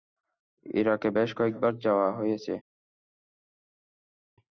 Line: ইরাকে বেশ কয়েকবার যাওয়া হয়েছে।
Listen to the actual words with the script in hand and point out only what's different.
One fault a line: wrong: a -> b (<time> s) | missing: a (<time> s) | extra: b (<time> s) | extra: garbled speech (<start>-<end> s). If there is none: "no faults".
no faults